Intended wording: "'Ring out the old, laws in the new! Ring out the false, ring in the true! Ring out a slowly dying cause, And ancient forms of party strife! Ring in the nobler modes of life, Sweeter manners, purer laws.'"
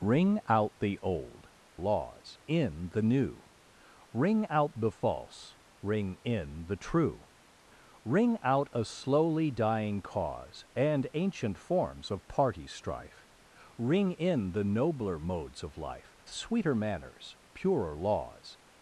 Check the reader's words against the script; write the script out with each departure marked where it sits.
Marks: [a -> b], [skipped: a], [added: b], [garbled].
"'Ring out the old, laws in the new! Ring out the false, ring in the true! Ring out a slowly dying cause, And ancient forms of party strife! Ring in the nobler modes of life, Sweeter manners, purer laws.'"